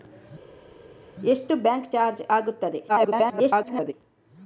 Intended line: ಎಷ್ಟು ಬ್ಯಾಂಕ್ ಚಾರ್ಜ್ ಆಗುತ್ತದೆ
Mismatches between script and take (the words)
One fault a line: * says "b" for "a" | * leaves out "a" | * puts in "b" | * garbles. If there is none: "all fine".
* garbles